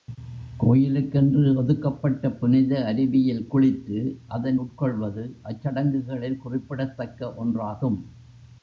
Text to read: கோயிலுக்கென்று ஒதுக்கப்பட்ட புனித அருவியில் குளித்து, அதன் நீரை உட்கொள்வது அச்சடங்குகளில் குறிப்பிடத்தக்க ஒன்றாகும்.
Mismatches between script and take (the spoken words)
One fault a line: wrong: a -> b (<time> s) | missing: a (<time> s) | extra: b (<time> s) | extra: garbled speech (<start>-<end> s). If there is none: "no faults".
missing: நீரை (4.6 s)